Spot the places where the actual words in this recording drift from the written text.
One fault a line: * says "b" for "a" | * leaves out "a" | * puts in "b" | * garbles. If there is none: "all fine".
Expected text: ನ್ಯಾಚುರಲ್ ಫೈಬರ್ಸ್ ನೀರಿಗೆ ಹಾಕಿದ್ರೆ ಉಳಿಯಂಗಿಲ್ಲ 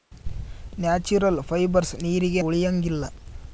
* leaves out "ಹಾಕಿದ್ರೆ"